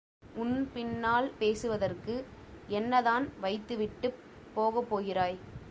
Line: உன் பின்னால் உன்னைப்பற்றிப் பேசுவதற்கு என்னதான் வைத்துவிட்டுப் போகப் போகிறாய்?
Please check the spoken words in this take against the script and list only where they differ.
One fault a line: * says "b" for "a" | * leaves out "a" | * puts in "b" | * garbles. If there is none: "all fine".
* leaves out "உன்னைப்பற்றிப்"